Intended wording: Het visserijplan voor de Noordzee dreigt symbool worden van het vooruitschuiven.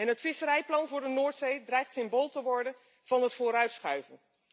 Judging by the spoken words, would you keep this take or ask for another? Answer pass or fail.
fail